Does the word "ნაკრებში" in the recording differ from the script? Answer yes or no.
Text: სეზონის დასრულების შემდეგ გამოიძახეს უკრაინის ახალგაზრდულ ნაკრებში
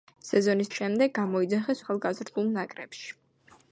no